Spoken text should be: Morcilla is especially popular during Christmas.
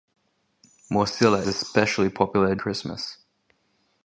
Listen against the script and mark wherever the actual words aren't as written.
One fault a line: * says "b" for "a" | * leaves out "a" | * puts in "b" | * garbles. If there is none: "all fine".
* leaves out "is"
* leaves out "during"